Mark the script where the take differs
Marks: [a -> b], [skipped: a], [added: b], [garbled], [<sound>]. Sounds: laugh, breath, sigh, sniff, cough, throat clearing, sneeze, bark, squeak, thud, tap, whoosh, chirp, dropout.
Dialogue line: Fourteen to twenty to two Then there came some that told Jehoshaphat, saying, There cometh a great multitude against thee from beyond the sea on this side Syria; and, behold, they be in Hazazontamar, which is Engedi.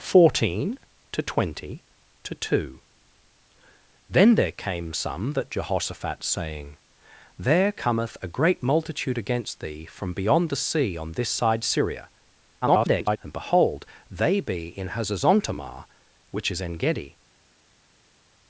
Fourteen to twenty to two Then there came some that [skipped: told] Jehoshaphat, saying, There cometh a great multitude against thee from beyond the sea on this side Syria; [garbled] and, behold, they be in Hazazontamar, which is Engedi.